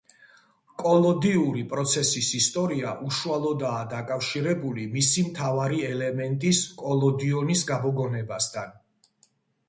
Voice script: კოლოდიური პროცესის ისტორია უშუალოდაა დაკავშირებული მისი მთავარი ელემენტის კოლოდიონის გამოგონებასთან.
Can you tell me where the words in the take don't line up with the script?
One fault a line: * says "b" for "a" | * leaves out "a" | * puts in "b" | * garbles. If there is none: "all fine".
all fine